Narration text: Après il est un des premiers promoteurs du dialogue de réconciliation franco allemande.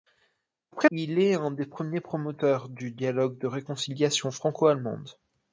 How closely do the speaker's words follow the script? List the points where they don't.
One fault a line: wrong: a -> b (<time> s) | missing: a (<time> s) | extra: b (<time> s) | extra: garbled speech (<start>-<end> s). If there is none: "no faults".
no faults